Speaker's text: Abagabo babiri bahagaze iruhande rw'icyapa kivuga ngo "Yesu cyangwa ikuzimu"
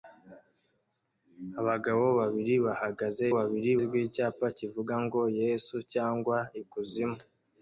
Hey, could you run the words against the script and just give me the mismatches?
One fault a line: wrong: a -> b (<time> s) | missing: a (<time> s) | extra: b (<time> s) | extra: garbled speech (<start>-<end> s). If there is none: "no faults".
wrong: iruhande -> babiri (3.4 s)